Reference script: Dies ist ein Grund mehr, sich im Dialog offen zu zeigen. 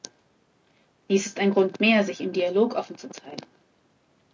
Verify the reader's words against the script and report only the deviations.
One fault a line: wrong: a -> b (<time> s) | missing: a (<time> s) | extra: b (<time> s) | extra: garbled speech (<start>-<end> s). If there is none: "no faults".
no faults